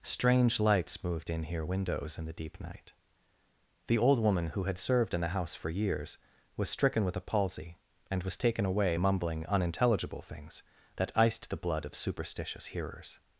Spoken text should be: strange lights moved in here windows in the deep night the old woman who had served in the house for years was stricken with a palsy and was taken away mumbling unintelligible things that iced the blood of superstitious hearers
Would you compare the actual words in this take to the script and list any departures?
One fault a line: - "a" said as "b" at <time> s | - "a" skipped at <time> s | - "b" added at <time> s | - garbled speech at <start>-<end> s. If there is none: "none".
none